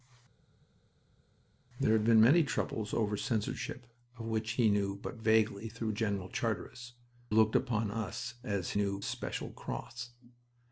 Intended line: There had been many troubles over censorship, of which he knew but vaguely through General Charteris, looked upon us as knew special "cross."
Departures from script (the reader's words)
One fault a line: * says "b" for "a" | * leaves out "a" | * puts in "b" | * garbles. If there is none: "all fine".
all fine